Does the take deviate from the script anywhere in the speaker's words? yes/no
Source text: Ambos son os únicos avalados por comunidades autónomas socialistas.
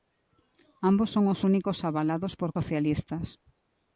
yes